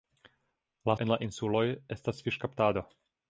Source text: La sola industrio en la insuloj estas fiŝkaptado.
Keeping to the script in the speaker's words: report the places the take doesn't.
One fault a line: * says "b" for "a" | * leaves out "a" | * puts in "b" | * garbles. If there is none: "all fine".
* leaves out "sola industrio"